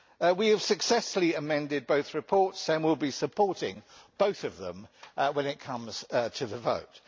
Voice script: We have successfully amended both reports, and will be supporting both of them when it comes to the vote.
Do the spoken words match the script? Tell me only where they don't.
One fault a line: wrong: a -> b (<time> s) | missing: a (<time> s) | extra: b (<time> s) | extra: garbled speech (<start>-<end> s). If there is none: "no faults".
no faults